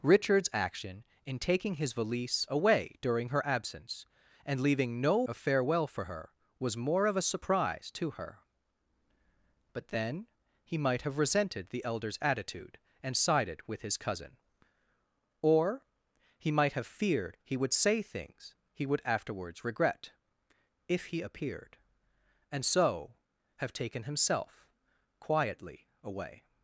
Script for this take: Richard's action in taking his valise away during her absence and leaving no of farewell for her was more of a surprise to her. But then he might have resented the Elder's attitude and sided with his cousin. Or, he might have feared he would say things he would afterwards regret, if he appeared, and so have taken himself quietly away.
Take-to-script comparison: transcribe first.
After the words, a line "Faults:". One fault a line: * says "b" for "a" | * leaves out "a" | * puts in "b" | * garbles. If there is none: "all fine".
Richard's action in taking his valise away during her absence and leaving no of farewell for her was more of a surprise to her. But then he might have resented the Elder's attitude and sided with his cousin. Or, he might have feared he would say things he would afterwards regret, if he appeared, and so have taken himself quietly away.
Faults:
all fine